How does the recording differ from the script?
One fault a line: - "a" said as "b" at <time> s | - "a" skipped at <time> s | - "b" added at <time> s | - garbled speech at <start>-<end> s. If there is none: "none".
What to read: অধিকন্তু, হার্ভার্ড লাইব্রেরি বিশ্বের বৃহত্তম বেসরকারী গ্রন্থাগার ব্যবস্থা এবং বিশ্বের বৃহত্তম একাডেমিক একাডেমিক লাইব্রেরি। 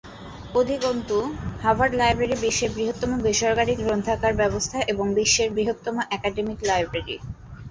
- "একাডেমিক" skipped at 6.6 s